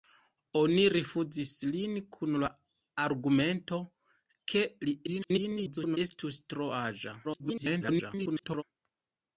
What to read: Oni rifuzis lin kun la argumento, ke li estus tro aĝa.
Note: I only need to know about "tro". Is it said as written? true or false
true